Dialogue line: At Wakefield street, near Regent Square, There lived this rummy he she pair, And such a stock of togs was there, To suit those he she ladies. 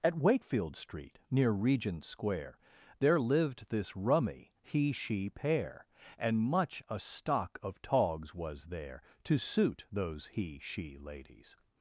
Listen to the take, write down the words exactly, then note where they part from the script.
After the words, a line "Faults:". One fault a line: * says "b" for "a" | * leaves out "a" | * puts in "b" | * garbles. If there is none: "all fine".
At Wakefield street, near Regent Square, There lived this rummy he she pair, And much a stock of togs was there, To suit those he she ladies.
Faults:
* says "much" for "such"